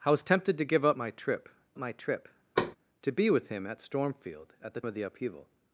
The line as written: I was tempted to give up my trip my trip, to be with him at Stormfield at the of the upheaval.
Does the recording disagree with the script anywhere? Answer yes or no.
no